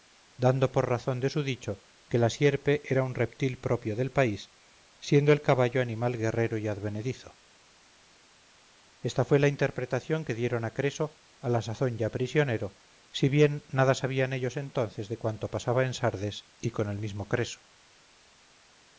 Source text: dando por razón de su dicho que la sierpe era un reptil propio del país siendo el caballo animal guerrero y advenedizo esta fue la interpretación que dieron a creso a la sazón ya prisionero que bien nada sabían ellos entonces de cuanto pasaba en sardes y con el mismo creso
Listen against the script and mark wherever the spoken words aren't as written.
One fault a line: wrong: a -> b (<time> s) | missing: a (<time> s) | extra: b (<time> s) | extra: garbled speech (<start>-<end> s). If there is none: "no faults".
wrong: que -> si (13.1 s)